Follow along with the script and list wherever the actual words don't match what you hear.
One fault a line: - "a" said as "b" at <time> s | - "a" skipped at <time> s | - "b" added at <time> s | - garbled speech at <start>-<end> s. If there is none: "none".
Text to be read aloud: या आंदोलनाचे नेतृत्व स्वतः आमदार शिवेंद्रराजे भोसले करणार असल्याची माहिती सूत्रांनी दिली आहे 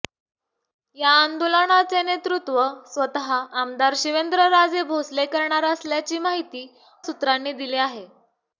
none